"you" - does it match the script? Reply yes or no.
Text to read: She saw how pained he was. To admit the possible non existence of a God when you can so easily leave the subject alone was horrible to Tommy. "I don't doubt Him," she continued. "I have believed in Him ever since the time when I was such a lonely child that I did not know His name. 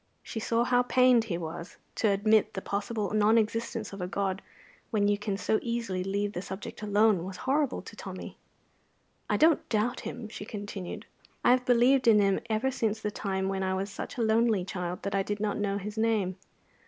yes